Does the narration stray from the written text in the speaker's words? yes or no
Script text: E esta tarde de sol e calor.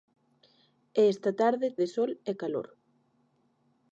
no